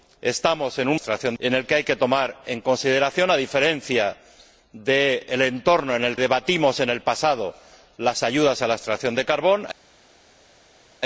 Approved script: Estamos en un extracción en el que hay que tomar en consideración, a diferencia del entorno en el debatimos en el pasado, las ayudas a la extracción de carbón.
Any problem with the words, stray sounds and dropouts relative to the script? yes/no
no